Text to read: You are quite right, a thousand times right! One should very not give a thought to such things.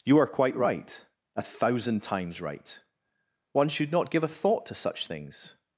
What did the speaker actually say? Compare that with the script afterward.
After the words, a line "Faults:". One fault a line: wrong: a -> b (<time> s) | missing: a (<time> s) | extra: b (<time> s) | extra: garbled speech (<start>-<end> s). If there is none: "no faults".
You are quite right, a thousand times right! One should not give a thought to such things.
Faults:
missing: very (3.9 s)